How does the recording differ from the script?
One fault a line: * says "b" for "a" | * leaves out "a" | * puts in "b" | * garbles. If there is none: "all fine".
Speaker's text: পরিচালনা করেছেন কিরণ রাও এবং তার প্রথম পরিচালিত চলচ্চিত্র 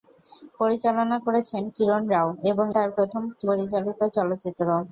all fine